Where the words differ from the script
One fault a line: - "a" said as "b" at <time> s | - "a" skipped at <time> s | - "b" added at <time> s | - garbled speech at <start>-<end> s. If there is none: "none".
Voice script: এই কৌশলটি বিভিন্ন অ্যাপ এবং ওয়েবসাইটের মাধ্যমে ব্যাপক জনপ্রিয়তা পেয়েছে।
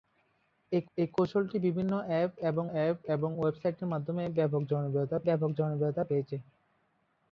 - "এই" added at 1.0 s
- "অ্যাপ এবং" added at 2.7 s
- "ব্যাপক জনপ্রিয়তা" added at 5.3 s